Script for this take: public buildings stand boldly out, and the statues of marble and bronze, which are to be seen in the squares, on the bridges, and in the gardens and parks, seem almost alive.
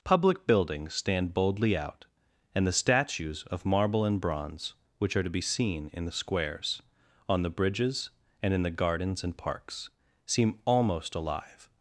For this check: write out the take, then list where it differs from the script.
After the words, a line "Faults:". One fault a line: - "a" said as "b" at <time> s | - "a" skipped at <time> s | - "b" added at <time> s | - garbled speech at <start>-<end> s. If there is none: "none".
public buildings stand boldly out, and the statues of marble and bronze, which are to be seen in the squares, on the bridges, and in the gardens and parks, seem almost alive.
Faults:
none